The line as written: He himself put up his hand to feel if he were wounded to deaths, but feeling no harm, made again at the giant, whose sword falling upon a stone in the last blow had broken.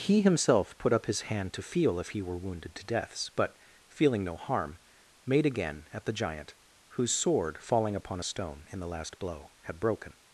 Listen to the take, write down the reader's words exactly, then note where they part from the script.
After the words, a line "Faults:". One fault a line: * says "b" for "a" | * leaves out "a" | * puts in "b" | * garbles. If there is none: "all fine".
He himself put up his hand to feel if he were wounded to deaths, but feeling no harm, made again at the giant, whose sword falling upon a stone in the last blow had broken.
Faults:
all fine